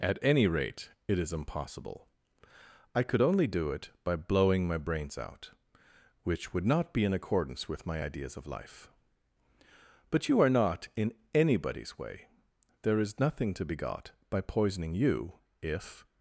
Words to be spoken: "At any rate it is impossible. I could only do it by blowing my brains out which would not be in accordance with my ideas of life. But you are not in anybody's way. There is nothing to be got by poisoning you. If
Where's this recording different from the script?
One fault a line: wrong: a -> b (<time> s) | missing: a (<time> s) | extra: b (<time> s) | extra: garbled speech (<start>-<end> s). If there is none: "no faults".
no faults